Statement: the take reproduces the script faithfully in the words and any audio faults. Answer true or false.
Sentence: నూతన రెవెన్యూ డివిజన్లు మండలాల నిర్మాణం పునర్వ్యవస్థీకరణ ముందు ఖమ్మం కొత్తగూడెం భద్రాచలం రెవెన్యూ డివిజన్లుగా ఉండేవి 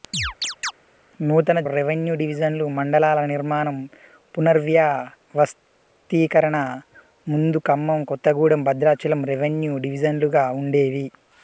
false